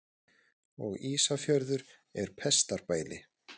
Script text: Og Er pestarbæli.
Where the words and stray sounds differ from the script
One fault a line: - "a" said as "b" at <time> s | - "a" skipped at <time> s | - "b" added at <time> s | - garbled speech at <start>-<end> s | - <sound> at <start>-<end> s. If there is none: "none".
- "Ísafjörður" added at 1.1 s